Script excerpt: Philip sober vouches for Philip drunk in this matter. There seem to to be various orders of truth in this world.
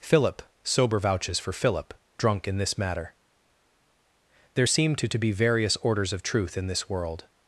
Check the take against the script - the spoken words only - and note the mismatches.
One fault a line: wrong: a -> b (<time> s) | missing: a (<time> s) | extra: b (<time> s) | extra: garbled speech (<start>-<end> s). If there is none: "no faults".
no faults